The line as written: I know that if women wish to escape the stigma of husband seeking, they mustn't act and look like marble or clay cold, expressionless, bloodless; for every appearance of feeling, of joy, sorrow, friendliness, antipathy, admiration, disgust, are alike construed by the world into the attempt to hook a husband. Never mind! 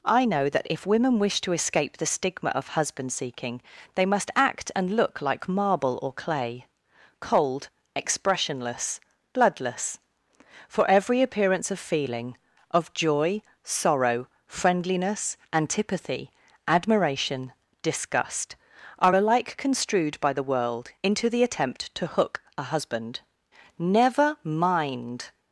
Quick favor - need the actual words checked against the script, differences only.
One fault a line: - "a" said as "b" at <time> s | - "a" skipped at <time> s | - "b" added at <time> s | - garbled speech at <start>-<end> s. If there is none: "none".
- "mustn't" said as "must" at 4.0 s